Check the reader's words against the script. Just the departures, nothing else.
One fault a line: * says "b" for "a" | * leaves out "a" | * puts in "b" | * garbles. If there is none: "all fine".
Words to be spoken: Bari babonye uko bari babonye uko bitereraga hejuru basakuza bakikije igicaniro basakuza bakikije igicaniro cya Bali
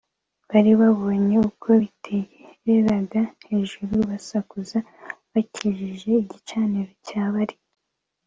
* leaves out "bari babonye uko"
* leaves out "basakuza bakikije igicaniro"